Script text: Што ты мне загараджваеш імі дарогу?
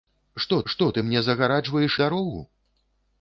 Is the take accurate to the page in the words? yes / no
no